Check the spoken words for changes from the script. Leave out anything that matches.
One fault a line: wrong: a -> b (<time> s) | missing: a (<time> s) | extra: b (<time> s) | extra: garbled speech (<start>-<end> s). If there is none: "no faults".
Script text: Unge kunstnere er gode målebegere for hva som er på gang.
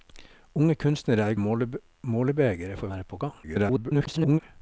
missing: gode (1.4 s)
missing: hva som (2.9 s)
extra: garbled speech (3.4-4.4 s)